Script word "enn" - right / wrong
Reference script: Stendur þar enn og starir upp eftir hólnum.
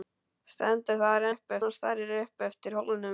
wrong